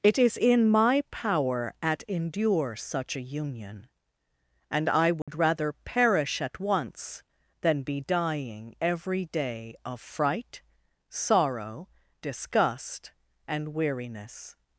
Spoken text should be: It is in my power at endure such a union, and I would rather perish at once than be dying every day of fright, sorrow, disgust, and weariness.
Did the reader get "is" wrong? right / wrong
right